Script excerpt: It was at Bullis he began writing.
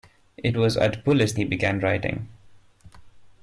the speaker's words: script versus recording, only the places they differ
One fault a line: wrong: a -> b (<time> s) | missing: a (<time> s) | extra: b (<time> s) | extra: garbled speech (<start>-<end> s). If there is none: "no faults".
no faults